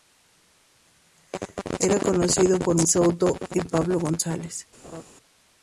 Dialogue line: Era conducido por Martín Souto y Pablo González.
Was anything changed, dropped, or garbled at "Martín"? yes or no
yes